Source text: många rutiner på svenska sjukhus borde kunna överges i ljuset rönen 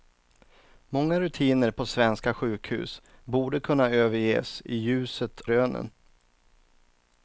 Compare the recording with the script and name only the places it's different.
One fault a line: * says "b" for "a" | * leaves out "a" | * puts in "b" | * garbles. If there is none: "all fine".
all fine